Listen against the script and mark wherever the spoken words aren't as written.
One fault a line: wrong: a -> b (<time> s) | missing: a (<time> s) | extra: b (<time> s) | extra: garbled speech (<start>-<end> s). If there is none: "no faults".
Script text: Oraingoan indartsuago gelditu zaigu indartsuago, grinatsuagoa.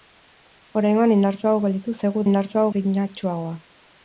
no faults